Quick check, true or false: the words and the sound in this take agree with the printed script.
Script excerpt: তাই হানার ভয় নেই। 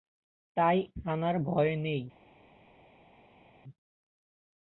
true